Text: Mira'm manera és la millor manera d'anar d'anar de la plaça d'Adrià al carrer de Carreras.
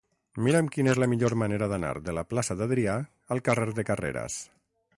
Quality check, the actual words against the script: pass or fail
fail